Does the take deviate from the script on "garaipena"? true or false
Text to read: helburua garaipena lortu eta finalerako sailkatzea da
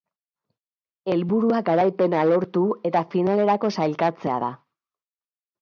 false